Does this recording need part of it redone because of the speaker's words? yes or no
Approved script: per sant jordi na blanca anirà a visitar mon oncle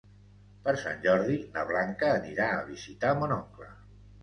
no